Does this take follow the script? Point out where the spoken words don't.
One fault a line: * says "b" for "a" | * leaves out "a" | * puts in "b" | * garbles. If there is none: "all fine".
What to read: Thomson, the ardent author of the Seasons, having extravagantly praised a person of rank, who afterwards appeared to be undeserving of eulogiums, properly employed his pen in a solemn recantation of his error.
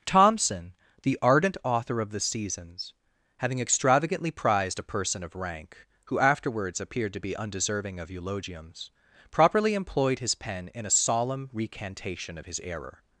* says "prized" for "praised"